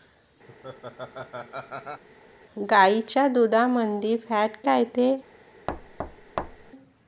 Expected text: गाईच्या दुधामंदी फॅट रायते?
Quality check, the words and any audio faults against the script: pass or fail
fail